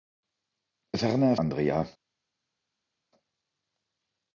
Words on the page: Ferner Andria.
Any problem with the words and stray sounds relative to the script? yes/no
no